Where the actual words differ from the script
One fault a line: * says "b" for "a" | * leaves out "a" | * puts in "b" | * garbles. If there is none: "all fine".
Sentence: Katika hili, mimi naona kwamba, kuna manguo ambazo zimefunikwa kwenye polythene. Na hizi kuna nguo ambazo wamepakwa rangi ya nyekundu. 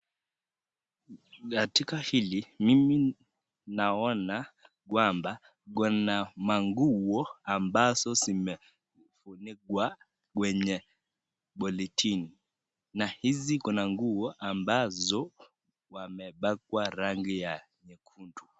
all fine